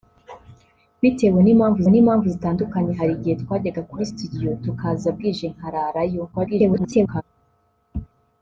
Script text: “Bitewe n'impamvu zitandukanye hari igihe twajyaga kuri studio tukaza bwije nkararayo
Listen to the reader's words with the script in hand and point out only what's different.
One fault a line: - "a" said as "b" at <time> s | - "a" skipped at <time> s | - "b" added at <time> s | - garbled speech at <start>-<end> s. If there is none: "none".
- "n'impamvu" added at 1.9 s
- garbled speech at 6.3-7.2 s